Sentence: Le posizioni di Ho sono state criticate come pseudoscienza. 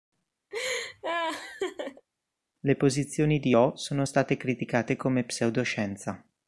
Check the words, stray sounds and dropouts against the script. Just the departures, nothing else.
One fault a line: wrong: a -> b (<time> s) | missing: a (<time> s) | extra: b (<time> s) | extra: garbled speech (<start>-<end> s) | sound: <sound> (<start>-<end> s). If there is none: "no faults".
sound: laugh (0.5-2.1 s)